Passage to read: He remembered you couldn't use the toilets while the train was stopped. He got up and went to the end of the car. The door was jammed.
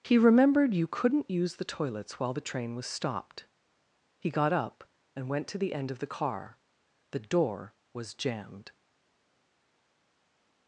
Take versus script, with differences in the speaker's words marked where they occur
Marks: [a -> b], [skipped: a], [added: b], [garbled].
He remembered you couldn't use the toilets while the train was stopped. He got up and went to the end of the car. The door was jammed.